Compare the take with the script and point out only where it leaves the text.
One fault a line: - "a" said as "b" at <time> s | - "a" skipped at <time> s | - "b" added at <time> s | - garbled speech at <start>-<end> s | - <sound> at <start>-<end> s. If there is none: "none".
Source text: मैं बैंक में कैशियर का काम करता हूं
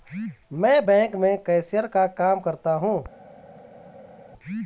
none